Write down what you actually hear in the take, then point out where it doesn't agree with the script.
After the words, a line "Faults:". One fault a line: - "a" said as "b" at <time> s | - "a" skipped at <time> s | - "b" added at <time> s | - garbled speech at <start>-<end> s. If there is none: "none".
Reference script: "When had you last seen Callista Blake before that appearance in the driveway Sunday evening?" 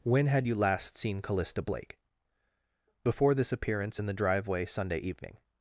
"When had you last seen Callista Blake before this appearance in the driveway Sunday evening?"
Faults:
- "that" said as "this" at 3.3 s